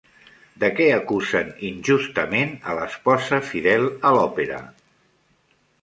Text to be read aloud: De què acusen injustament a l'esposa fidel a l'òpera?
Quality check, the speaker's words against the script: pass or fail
pass